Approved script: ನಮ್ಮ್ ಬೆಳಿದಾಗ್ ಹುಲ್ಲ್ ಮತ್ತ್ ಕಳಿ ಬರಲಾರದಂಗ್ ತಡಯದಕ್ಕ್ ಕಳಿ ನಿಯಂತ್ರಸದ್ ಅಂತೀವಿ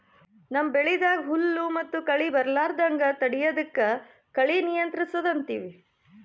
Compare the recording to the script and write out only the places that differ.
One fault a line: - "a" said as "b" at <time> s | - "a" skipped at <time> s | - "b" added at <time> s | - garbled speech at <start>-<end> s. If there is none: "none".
none